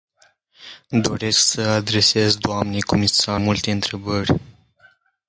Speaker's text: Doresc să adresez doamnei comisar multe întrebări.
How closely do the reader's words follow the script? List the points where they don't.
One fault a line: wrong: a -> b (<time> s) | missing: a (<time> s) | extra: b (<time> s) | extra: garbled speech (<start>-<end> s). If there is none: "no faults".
no faults